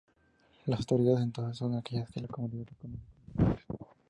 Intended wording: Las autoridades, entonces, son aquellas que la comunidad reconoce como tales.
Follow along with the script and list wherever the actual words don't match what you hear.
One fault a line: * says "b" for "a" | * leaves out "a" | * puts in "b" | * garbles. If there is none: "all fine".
all fine